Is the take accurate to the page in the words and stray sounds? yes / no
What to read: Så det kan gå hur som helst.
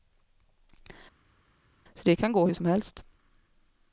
yes